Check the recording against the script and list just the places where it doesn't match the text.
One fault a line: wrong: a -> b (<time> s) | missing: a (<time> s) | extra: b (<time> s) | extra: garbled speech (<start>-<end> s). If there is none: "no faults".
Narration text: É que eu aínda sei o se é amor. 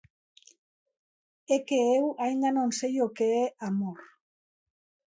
extra: non (2.6 s)
wrong: se -> que (3.2 s)